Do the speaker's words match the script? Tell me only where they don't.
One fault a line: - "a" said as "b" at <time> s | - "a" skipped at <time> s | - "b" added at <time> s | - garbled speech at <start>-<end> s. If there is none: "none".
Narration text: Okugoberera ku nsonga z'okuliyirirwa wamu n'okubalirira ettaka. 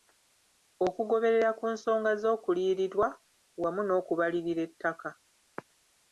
none